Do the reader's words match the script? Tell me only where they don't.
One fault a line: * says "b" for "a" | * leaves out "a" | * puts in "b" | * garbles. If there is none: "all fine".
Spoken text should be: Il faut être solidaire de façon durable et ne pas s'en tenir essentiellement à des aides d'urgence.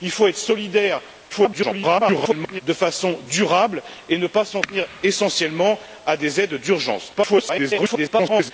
* garbles
* garbles